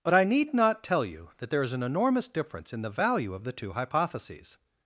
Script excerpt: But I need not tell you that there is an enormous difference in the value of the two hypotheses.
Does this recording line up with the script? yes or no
yes